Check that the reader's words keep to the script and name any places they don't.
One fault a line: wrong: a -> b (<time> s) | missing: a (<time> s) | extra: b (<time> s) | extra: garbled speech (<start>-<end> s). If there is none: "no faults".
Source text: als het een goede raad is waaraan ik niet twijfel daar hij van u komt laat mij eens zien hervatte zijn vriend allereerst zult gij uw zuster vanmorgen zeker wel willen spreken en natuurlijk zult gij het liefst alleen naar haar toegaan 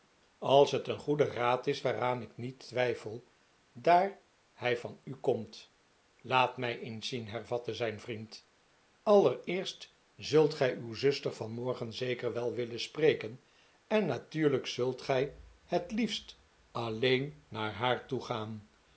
no faults